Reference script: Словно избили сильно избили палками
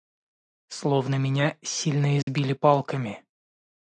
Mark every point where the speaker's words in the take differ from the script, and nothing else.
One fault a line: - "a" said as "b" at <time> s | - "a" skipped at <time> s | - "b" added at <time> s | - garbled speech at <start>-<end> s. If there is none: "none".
- "избили" said as "меня" at 1.1 s